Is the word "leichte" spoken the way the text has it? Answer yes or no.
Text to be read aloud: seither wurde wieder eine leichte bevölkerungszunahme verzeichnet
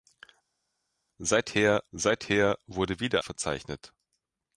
no